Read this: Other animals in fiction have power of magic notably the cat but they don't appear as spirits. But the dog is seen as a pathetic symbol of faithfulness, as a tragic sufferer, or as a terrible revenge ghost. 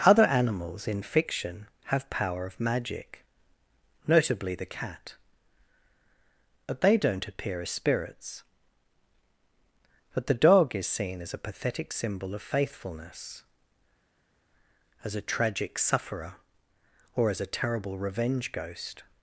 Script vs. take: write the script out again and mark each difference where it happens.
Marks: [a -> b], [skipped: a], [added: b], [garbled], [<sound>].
Other animals in fiction have power of magic notably the cat but they don't appear as spirits. But the dog is seen as a pathetic symbol of faithfulness, as a tragic sufferer, or as a terrible revenge ghost.